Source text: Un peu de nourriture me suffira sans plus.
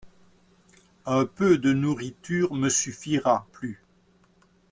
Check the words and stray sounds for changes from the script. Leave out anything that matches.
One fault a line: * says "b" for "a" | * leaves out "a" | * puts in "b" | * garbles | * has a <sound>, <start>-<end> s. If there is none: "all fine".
* leaves out "sans"